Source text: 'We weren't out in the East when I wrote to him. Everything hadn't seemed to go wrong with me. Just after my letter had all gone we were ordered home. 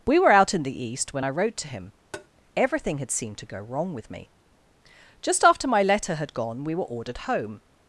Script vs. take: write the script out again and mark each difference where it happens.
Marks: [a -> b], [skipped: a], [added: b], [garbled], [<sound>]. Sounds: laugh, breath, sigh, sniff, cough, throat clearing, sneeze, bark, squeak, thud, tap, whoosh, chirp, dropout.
'We [weren't -> were] out in the East when I wrote to him. [tap] Everything [hadn't -> had] seemed to go wrong with me. Just after my letter had [skipped: all] gone we were ordered home.